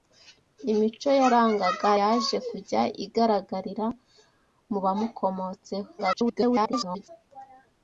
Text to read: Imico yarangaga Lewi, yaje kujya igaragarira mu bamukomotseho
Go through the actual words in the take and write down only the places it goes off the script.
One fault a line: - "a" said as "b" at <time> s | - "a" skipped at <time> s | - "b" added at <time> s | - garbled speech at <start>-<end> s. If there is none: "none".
- "Lewi" skipped at 1.9 s
- garbled speech at 6.0-7.1 s